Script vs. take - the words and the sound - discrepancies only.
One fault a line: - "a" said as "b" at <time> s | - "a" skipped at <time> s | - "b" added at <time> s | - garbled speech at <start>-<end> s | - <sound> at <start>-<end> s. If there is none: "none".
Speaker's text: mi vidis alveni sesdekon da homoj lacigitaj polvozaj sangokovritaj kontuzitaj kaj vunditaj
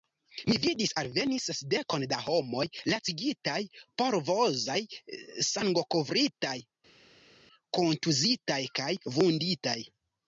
none